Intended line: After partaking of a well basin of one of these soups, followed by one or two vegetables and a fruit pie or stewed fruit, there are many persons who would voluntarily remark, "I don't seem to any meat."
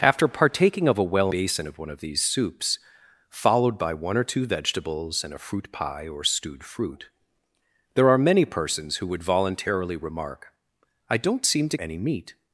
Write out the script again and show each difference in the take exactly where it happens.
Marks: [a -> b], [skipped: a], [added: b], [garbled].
After partaking of a well basin of one of these soups, followed by one or two vegetables and a fruit pie or stewed fruit, there are many persons who would voluntarily remark, "I don't seem to any meat."